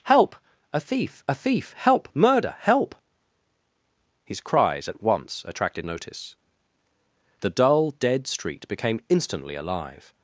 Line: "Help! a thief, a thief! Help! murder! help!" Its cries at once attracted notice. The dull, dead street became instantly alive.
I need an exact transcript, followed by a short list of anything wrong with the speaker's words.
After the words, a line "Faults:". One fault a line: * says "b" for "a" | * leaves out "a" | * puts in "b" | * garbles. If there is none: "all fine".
"Help! a thief, a thief! Help! murder! help!" His cries at once attracted notice. The dull, dead street became instantly alive.
Faults:
* says "His" for "Its"